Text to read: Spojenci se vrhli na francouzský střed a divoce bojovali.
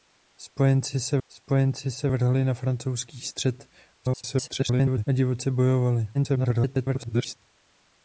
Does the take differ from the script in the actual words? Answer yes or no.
yes